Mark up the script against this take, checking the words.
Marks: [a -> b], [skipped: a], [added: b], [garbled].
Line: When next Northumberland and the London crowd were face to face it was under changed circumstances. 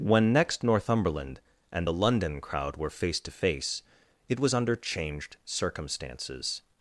When next Northumberland and the London crowd were face to face it was under changed circumstances.